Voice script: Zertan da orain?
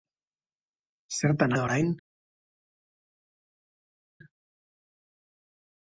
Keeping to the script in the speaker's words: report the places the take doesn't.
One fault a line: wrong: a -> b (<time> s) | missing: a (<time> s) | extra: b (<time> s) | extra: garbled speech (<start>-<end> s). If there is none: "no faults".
no faults